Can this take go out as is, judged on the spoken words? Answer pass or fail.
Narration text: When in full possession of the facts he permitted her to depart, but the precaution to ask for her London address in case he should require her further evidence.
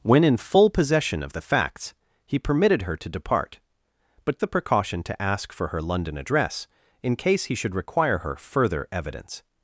pass